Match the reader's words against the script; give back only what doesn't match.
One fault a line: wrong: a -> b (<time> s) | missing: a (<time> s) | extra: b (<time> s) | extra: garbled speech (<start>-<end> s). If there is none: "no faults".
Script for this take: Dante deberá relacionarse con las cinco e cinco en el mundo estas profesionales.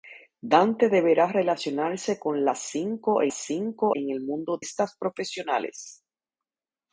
no faults